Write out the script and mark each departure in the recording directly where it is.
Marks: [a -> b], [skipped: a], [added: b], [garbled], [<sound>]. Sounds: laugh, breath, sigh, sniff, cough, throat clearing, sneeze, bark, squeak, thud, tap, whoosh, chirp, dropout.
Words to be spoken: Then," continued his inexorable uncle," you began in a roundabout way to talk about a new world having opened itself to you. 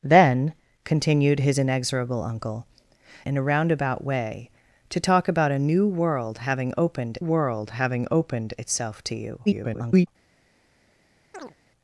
Then," continued his inexorable uncle," [skipped: you began] in a roundabout way to talk about a new world having opened [added: world having opened] itself to you. [garbled] [chirp]